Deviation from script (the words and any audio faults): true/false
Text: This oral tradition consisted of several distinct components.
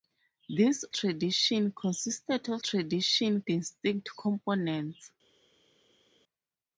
true